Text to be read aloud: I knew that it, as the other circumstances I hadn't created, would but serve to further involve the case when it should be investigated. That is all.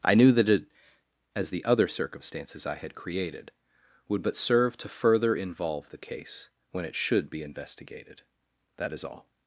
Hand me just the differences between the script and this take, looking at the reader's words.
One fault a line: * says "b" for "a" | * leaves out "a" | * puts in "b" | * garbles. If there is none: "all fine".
* says "had" for "hadn't"